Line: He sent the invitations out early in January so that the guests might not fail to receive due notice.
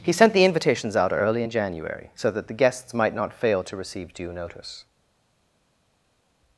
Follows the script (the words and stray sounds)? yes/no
yes